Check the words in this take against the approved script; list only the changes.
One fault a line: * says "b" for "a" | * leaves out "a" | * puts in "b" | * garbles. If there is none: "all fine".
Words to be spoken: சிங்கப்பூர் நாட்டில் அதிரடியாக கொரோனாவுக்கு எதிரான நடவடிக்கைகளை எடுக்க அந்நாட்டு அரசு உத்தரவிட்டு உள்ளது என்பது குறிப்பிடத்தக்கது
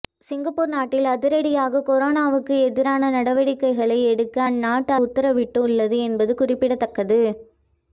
* leaves out "அரசு"